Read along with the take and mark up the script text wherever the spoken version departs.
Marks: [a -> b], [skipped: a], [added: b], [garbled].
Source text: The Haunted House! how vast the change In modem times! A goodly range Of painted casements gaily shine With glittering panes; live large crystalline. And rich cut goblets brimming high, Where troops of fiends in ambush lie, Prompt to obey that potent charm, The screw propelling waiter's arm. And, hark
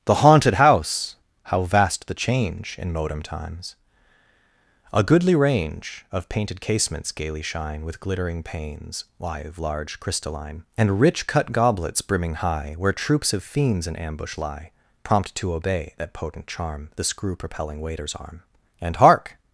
The Haunted House! how vast the change In modem times! A goodly range Of painted casements gaily shine With glittering panes; live large crystalline. And rich cut goblets brimming high, Where troops of fiends in ambush lie, Prompt to obey that potent charm, The screw propelling waiter's arm. And, hark